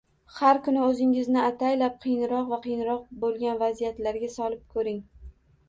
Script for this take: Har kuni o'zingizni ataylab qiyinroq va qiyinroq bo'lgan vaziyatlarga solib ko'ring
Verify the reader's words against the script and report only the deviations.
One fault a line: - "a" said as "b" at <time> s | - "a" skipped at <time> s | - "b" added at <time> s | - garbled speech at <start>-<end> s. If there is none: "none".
none